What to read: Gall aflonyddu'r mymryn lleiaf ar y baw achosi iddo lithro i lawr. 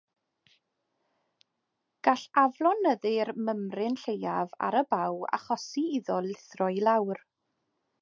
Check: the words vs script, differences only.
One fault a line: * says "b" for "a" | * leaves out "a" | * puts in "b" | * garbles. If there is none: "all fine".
all fine